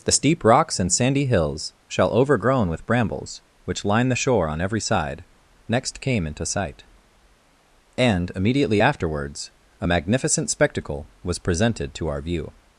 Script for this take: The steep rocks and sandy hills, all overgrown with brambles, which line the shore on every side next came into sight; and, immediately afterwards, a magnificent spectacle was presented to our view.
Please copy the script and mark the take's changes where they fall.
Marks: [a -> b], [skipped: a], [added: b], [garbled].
The steep rocks and sandy hills, [all -> shall] overgrown with brambles, which line the shore on every side next came into sight; and, immediately afterwards, a magnificent spectacle was presented to our view.